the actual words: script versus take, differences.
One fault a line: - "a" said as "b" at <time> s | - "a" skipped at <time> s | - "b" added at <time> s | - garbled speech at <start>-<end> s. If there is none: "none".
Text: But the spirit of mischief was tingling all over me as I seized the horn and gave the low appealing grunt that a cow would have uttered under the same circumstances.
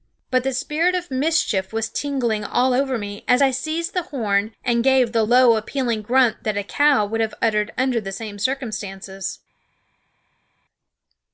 none